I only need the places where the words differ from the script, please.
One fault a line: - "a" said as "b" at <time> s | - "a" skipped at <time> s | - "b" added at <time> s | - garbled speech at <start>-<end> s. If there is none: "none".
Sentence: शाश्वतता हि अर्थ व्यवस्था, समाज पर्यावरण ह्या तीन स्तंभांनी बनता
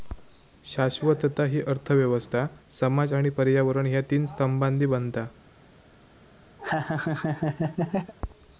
- "आणि" added at 3.1 s